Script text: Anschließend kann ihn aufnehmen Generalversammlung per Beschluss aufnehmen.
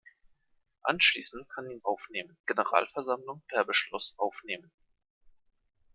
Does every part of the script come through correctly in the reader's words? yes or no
yes